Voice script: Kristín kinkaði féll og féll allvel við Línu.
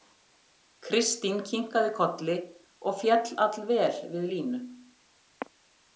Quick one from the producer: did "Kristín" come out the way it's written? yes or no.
yes